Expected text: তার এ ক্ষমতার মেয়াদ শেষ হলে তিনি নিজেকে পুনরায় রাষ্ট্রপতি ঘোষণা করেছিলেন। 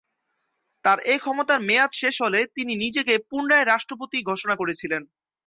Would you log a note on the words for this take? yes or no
no